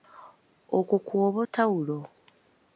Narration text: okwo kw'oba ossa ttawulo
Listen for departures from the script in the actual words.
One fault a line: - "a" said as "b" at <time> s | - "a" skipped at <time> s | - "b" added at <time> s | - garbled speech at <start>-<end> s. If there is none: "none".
- "ossa" skipped at 1.4 s